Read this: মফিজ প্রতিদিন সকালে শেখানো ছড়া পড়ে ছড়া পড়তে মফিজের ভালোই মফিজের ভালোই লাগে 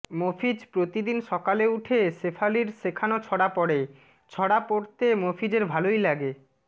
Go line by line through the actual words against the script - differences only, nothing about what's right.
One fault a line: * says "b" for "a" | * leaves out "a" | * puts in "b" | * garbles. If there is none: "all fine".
* puts in "উঠে শেফালির"
* leaves out "মফিজের ভালোই"